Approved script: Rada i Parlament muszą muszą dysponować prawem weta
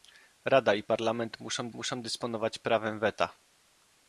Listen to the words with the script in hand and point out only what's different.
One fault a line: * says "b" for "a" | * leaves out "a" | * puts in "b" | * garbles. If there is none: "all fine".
all fine